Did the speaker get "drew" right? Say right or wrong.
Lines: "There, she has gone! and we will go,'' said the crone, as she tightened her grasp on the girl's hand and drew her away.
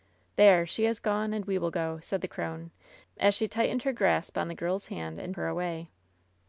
wrong